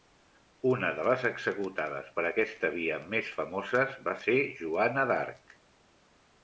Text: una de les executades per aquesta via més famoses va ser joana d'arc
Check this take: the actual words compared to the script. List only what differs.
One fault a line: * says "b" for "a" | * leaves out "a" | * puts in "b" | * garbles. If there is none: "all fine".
all fine